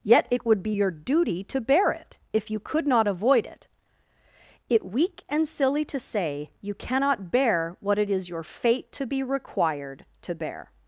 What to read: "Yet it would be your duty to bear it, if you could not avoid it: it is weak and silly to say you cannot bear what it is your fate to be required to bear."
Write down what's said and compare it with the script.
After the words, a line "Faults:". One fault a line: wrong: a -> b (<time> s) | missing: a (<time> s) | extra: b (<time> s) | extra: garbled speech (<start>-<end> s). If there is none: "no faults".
"Yet it would be your duty to bear it, if you could not avoid it: it weak and silly to say you cannot bear what it is your fate to be required to bear."
Faults:
missing: is (4.8 s)